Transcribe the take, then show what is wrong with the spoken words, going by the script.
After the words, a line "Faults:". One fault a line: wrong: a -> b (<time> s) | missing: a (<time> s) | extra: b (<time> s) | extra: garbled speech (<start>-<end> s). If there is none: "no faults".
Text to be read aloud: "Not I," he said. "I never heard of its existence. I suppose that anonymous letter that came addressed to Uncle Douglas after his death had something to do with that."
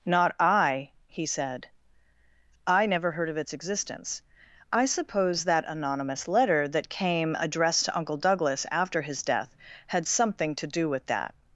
"Not I," he said. "I never heard of its existence. I suppose that anonymous letter that came addressed to Uncle Douglas after his death had something to do with that."
Faults:
no faults